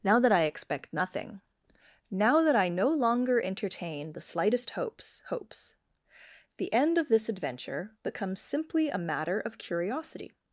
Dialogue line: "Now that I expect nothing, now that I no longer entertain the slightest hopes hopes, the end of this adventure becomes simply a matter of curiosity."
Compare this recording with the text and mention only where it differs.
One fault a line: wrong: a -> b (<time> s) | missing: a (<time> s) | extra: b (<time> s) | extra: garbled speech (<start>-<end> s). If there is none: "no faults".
no faults